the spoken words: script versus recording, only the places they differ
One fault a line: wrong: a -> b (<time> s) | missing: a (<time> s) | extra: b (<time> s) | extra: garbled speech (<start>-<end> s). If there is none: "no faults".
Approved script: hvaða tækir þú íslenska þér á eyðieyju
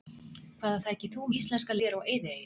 no faults